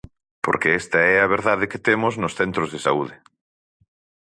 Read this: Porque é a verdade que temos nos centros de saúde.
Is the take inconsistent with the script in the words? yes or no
yes